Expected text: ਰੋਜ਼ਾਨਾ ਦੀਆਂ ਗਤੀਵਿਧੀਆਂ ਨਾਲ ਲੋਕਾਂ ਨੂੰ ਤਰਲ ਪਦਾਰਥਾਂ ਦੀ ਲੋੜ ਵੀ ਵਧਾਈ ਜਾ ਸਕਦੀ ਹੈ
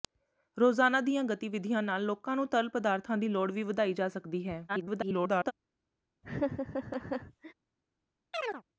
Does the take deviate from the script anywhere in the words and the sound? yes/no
yes